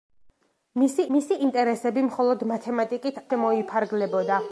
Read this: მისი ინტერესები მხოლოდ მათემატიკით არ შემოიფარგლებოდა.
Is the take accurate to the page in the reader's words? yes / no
no